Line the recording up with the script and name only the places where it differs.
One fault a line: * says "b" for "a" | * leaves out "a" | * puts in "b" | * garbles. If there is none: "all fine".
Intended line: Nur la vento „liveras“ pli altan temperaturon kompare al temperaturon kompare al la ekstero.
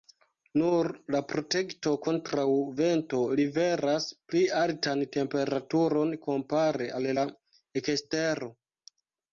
* puts in "protekto kontraŭ"
* leaves out "temperaturon kompare al"